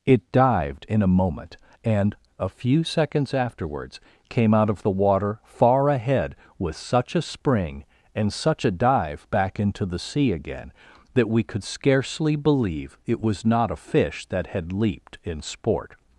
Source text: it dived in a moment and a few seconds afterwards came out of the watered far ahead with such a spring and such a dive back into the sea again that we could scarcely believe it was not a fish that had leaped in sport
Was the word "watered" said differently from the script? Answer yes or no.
yes